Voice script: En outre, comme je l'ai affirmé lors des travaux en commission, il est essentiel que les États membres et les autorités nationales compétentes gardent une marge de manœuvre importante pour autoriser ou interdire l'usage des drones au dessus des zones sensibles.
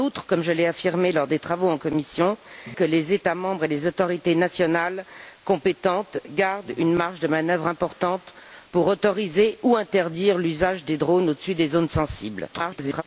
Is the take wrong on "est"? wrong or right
wrong